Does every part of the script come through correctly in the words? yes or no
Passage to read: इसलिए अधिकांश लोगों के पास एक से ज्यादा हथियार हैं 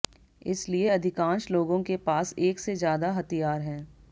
yes